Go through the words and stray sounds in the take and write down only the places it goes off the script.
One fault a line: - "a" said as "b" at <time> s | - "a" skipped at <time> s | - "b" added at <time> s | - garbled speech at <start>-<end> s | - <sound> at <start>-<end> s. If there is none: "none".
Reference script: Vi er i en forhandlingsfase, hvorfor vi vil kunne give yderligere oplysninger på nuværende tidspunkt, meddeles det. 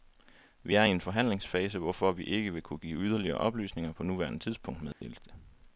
- "ikke" added at 2.2 s
- dropout at 4.9-5.0 s